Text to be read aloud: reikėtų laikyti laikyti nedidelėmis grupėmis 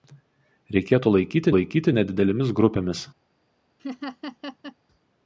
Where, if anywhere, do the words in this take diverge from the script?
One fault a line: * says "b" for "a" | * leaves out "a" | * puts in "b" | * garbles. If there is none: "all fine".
all fine